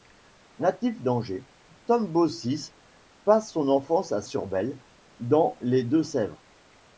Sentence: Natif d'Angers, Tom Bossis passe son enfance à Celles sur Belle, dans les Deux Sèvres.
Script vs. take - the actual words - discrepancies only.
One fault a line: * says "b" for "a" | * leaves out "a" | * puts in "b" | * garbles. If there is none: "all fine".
* leaves out "Celles"